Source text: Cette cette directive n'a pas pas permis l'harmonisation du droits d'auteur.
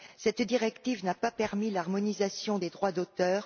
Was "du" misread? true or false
true